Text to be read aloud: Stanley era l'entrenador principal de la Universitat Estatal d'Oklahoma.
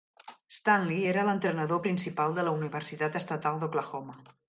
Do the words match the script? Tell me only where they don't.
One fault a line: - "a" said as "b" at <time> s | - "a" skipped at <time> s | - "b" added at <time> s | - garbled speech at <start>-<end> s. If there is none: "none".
none